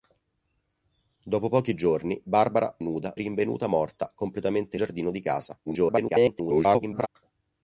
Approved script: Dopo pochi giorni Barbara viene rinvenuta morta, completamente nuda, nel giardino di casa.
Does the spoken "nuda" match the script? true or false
false